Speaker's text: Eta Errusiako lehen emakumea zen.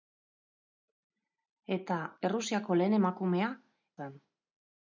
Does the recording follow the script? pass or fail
pass